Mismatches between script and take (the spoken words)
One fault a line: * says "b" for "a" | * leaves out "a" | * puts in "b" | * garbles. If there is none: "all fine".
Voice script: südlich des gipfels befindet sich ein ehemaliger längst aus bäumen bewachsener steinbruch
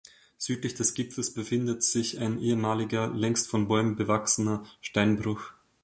* says "von" for "aus"